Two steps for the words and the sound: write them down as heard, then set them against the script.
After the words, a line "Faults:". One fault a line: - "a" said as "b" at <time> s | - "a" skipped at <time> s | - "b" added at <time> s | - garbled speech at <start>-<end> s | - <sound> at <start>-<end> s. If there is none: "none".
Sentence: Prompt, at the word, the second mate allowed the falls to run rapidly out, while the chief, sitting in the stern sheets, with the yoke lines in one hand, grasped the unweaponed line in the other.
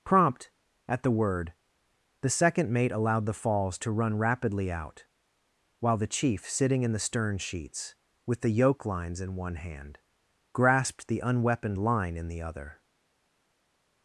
Prompt, at the word, the second mate allowed the falls to run rapidly out, while the chief, sitting in the stern sheets, with the yoke lines in one hand, grasped the unweaponed line in the other.
Faults:
none